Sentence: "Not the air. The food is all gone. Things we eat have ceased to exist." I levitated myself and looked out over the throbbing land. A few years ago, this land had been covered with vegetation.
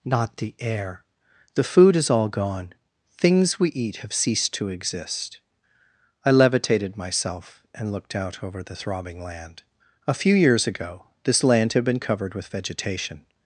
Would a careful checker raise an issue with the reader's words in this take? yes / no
no